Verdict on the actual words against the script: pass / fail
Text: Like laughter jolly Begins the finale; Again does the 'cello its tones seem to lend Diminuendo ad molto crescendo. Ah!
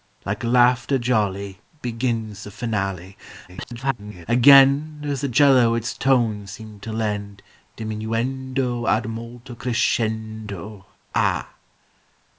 fail